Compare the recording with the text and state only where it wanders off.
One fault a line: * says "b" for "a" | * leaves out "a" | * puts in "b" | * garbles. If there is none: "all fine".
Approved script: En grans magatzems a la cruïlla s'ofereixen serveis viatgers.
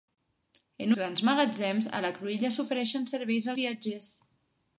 all fine